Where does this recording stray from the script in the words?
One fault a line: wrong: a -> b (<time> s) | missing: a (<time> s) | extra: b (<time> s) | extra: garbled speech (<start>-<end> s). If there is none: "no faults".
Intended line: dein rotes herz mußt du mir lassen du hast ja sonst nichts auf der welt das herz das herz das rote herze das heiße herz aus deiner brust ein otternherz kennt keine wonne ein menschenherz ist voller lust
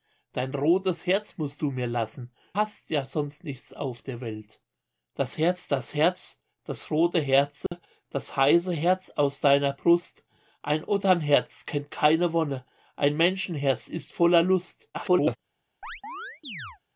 missing: du (2.3 s)
extra: garbled speech (14.9-15.4 s)